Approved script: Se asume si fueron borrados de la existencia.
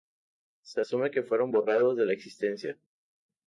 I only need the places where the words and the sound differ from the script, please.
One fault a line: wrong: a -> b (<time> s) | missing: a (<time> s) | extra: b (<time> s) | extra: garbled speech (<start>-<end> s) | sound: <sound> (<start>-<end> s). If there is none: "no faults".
wrong: si -> que (1.1 s)